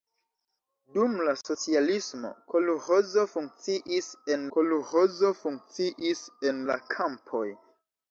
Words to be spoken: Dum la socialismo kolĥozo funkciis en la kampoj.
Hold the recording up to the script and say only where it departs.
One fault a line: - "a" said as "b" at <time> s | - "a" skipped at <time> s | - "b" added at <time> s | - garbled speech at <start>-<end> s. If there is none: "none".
- "kolĥozo funkciis en" added at 4.6 s